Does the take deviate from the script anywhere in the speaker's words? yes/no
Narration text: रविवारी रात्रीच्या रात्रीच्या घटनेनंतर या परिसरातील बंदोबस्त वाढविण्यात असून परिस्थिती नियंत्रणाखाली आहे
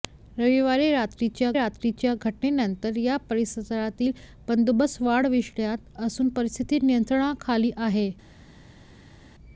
no